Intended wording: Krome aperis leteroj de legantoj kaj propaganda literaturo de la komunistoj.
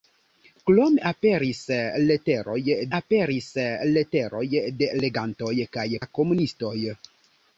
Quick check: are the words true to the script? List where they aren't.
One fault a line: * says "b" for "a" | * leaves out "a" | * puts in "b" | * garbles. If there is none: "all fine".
* puts in "aperis leteroj"
* leaves out "propaganda literaturo de"